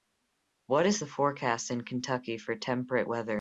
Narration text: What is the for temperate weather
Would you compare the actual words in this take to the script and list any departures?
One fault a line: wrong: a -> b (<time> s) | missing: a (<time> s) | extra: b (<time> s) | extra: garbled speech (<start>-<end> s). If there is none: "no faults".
extra: forecast in Kentucky (1.1 s)